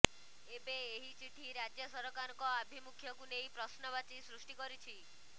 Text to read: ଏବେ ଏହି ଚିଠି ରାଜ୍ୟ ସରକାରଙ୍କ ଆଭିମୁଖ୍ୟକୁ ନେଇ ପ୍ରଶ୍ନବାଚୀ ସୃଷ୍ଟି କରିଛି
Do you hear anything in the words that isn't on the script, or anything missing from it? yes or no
no